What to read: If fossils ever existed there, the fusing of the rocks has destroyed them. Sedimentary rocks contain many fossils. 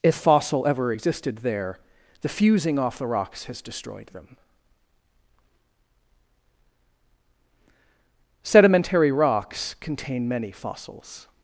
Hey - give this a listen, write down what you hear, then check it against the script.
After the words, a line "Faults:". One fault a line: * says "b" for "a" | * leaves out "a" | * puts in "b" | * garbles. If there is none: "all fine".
If fossil ever existed there, the fusing off the rocks has destroyed them. Sedimentary rocks contain many fossils.
Faults:
* says "fossil" for "fossils"
* says "off" for "of"